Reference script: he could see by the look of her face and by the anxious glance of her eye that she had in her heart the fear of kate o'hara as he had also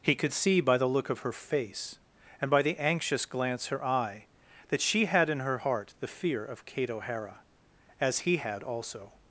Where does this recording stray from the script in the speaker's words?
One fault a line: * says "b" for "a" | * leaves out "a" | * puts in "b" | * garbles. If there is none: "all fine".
* leaves out "of"